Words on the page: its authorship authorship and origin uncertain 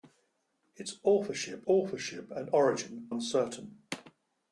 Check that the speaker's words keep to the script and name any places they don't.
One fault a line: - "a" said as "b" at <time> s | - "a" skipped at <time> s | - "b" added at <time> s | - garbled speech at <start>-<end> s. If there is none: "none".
none